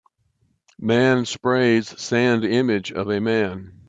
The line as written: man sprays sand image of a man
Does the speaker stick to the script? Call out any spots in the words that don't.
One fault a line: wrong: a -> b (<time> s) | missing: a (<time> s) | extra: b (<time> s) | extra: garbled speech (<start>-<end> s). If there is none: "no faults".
no faults